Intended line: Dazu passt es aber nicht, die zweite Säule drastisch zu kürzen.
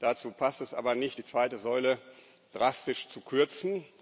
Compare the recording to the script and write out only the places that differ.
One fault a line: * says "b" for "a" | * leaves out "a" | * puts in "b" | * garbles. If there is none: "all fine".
all fine